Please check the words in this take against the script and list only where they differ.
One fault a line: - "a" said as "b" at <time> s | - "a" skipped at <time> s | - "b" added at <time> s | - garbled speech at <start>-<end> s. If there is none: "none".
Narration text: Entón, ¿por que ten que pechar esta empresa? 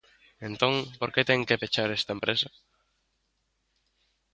none